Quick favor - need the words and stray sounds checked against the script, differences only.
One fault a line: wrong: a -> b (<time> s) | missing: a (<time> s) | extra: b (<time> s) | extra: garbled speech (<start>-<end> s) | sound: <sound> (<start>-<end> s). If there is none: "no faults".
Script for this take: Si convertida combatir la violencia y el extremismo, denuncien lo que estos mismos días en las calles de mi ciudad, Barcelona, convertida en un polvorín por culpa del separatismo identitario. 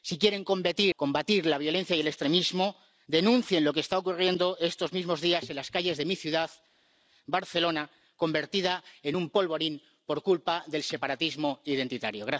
wrong: convertida -> quieren (0.2 s)
extra: está ocurriendo (3.8 s)